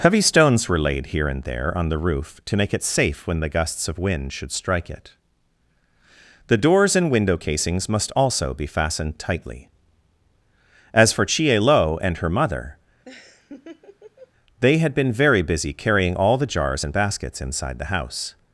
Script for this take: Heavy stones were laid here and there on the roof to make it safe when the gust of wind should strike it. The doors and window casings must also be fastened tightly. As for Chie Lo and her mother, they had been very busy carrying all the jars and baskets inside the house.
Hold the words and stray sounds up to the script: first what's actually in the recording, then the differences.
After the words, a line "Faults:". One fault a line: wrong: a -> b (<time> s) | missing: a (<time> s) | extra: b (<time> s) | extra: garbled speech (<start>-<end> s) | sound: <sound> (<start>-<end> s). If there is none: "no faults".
Heavy stones were laid here and there on the roof to make it safe when the gusts of wind should strike it. The doors and window casings must also be fastened tightly. As for Chie Lo and her mother, they had been very busy carrying all the jars and baskets inside the house.
Faults:
wrong: gust -> gusts (3.5 s)
sound: laugh (13.0-14.3 s)